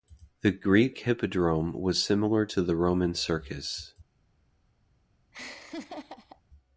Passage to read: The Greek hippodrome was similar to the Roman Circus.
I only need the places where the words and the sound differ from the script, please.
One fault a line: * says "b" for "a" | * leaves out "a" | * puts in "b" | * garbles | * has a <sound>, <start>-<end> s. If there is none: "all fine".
* has a laugh, 5.3-6.4 s